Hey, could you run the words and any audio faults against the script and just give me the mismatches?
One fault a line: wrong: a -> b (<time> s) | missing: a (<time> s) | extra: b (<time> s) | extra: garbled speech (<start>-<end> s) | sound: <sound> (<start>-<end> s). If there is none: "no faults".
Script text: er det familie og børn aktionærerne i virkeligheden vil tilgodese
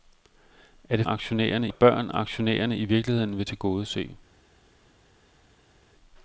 wrong: familie -> aktionærerne (1.1 s)